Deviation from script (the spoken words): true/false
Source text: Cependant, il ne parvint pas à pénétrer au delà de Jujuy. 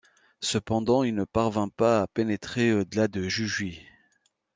false